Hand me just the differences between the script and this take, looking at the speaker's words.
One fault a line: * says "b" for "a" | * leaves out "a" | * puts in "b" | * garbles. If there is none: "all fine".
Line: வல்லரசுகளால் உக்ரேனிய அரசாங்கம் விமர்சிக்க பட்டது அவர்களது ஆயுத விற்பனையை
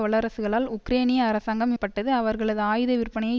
* leaves out "விமர்சிக்க"